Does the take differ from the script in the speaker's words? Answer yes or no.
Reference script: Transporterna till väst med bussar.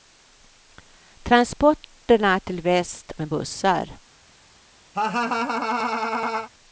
no